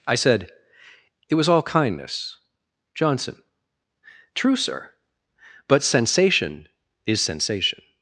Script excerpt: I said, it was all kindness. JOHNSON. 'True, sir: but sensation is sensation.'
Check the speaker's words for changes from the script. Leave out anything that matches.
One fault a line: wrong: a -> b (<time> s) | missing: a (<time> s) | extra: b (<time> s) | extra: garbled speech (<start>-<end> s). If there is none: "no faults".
no faults